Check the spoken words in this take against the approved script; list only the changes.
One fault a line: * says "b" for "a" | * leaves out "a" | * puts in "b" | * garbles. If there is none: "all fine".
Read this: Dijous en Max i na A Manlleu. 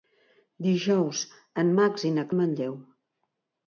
all fine